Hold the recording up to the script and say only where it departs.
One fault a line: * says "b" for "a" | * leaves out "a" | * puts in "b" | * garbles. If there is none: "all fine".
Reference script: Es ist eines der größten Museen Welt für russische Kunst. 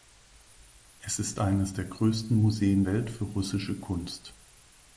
all fine